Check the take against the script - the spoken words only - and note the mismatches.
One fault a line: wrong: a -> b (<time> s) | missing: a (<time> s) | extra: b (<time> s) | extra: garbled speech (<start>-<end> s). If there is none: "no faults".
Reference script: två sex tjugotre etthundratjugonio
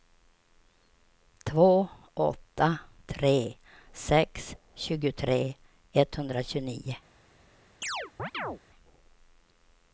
extra: åtta tre (2.1 s)